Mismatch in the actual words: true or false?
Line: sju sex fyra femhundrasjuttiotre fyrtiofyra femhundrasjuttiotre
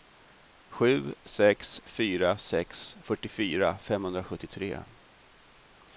true